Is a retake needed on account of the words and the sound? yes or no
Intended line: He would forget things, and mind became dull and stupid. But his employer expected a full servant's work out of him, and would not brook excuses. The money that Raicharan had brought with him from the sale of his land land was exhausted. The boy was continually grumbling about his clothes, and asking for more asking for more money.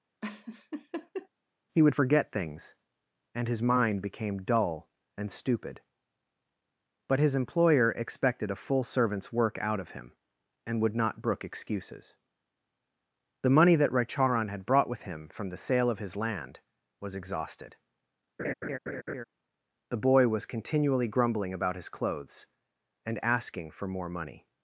yes